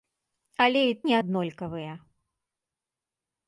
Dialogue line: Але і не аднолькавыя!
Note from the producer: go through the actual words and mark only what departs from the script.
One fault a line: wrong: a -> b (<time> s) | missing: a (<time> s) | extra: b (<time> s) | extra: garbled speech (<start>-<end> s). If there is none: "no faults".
no faults